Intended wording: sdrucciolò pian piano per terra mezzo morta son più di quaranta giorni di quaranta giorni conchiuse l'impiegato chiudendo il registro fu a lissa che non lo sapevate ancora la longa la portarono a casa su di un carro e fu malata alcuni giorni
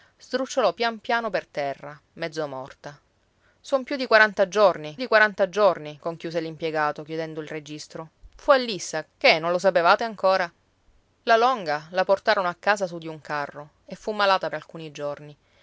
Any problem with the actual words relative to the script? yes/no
no